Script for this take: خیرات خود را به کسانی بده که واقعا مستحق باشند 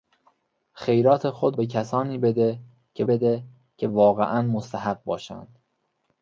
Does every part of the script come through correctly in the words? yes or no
no